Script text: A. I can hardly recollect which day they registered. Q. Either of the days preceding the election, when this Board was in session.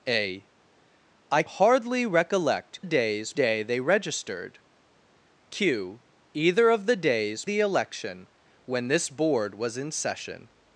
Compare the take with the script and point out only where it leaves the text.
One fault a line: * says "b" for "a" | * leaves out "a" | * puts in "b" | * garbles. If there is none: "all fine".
* leaves out "can"
* says "days" for "which"
* leaves out "preceding"